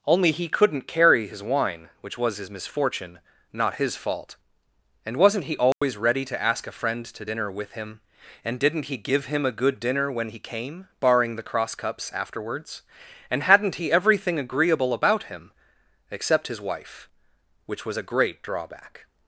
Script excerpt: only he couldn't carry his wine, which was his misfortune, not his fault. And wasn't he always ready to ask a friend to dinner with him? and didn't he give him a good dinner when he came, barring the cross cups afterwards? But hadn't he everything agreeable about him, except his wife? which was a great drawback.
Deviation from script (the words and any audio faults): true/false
true